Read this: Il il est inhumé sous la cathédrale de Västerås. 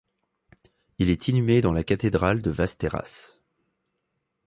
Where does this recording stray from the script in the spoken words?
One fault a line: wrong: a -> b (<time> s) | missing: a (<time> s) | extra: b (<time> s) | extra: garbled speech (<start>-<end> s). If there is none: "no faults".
missing: il (1.1 s)
wrong: sous -> dans (1.6 s)